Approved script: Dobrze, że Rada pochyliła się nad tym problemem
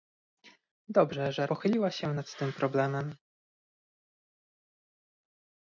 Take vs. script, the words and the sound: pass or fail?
fail